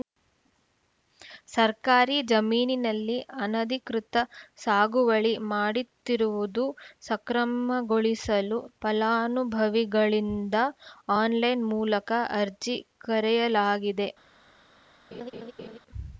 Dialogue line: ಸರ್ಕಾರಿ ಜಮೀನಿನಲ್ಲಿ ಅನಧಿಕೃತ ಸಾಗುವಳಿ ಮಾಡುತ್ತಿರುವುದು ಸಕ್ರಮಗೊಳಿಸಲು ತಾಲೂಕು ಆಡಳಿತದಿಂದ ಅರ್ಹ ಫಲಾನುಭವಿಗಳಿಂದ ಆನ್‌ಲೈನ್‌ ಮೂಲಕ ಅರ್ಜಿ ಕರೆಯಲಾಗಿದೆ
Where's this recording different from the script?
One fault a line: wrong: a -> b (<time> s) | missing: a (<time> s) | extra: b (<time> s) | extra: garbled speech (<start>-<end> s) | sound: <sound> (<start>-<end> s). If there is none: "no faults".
missing: ತಾಲೂಕು ಆಡಳಿತದಿಂದ ಅರ್ಹ (8.6 s)
sound: laugh (15.1-15.8 s)